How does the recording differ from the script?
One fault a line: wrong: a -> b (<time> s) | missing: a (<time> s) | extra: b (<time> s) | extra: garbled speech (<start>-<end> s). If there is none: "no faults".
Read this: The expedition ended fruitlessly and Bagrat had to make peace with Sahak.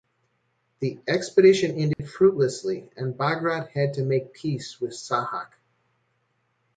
no faults